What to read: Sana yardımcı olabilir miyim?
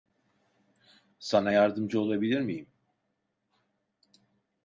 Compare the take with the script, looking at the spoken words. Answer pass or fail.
pass